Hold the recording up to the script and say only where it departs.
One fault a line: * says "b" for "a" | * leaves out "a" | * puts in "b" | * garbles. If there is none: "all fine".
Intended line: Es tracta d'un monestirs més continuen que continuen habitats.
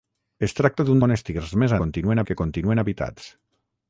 all fine